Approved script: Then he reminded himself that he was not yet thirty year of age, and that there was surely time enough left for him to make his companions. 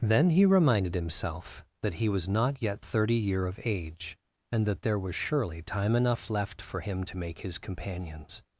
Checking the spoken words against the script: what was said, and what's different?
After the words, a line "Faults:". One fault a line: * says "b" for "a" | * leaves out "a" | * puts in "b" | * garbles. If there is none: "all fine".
Then he reminded himself that he was not yet thirty year of age, and that there was surely time enough left for him to make his companions.
Faults:
all fine